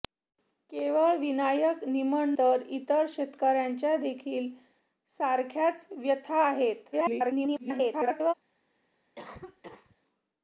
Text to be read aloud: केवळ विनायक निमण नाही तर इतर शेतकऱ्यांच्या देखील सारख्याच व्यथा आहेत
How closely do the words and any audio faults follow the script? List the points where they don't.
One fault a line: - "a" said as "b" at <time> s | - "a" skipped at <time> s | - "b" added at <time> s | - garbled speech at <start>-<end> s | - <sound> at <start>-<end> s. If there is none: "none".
- "नाही" skipped at 2.3 s
- garbled speech at 6.9-8.3 s
- cough at 9.1-10.0 s